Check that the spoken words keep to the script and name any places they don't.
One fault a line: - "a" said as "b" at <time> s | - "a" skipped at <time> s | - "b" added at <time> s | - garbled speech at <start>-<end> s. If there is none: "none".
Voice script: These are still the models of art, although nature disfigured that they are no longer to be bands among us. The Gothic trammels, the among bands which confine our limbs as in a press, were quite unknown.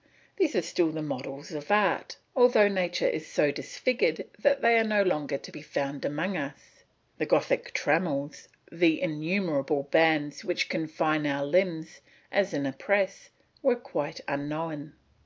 - "is so" added at 3.1 s
- "bands" said as "found" at 5.6 s
- "among" said as "innumerable" at 9.0 s